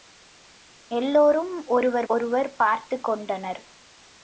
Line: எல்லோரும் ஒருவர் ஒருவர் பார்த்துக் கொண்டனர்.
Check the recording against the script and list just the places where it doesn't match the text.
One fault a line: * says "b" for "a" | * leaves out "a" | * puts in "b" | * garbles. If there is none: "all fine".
all fine